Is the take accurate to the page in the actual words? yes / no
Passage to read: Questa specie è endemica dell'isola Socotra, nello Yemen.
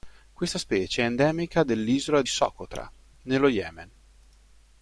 yes